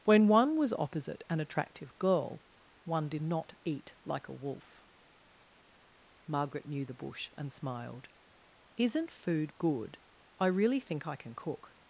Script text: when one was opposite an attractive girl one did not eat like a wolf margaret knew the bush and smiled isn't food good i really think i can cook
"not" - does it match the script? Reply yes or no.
yes